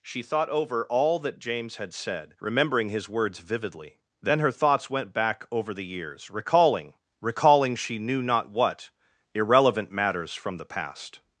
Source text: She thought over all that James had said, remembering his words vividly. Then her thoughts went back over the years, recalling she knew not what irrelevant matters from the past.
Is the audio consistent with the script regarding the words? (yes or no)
no